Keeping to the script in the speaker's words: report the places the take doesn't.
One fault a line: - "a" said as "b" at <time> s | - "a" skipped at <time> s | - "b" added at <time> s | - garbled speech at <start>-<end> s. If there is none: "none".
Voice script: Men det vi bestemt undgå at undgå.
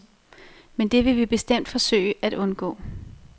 - "vil" added at 1.1 s
- "undgå" said as "forsøge" at 1.7 s